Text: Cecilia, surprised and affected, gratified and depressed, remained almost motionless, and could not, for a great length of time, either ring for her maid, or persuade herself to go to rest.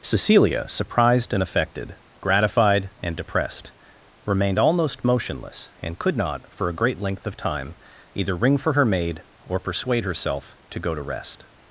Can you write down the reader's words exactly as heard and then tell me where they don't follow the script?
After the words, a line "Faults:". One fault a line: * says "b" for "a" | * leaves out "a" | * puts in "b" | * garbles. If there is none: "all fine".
Cecilia, surprised and affected, gratified and depressed, remained almost motionless, and could not, for a great length of time, either ring for her maid, or persuade herself to go to rest.
Faults:
all fine